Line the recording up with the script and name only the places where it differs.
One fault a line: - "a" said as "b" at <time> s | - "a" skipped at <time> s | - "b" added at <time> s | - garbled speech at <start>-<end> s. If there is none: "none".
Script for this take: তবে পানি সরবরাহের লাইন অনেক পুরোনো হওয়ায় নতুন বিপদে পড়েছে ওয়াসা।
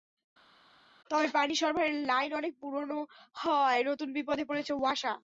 none